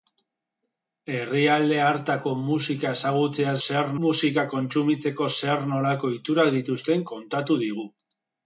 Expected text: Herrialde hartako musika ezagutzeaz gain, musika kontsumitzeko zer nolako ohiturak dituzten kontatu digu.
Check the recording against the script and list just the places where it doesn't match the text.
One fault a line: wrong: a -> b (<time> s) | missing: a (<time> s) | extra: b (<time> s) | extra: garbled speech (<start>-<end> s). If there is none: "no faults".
wrong: gain -> zer (3.7 s)